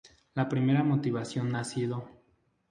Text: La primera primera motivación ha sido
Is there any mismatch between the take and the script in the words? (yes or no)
yes